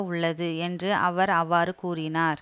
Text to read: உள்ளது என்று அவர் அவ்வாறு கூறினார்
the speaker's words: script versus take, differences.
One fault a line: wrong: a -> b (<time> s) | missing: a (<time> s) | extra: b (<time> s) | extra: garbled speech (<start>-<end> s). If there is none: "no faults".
no faults